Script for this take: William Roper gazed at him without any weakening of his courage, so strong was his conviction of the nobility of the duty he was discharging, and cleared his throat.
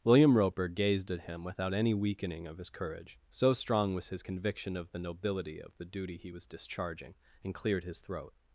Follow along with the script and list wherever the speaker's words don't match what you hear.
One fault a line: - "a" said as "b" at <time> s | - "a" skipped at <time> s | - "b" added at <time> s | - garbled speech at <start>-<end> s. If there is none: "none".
none